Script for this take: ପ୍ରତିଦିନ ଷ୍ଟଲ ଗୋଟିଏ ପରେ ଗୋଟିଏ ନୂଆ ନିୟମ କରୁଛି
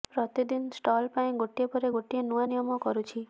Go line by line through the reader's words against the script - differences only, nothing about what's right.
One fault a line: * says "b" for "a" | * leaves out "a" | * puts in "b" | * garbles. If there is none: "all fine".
* puts in "ପାଇଁ"